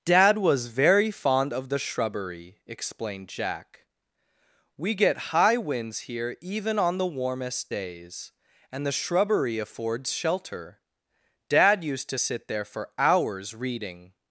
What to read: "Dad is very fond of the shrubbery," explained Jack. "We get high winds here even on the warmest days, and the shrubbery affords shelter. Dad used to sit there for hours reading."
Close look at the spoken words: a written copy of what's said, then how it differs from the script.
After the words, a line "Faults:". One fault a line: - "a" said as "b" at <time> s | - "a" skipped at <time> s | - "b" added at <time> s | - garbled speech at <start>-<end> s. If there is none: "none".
"Dad was very fond of the shrubbery," explained Jack. "We get high winds here even on the warmest days, and the shrubbery affords shelter. Dad used to sit there for hours reading."
Faults:
- "is" said as "was" at 0.4 s